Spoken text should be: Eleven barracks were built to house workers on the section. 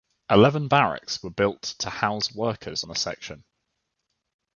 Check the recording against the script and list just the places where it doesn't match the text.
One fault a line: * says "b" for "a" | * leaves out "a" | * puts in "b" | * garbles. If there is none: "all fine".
* leaves out "on"